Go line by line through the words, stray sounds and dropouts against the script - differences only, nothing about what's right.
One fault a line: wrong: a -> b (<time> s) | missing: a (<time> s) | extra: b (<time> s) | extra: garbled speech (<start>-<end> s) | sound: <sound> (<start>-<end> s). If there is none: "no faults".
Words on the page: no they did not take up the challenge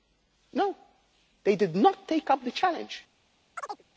sound: chirp (3.6-3.8 s)